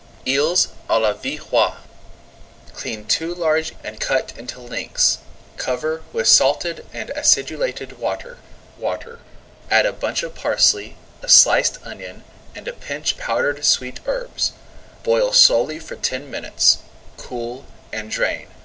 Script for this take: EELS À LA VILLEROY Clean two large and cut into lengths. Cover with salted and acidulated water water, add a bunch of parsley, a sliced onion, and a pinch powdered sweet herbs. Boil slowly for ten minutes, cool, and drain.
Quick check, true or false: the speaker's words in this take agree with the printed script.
true